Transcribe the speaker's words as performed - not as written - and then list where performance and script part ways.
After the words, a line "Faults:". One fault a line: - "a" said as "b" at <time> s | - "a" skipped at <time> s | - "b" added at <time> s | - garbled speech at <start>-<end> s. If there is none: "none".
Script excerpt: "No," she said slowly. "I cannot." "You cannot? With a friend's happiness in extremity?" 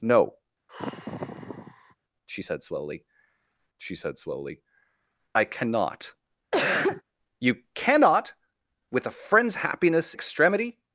"No," she said slowly she said slowly. "I cannot." "You cannot? With a friend's happiness extremity?"
Faults:
- "she said slowly" added at 3.8 s
- "in" skipped at 10.1 s